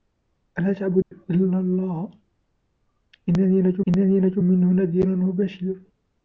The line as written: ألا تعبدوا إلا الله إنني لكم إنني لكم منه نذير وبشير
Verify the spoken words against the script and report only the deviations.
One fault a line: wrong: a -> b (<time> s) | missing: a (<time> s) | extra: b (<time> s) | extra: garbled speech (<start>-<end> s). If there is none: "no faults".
no faults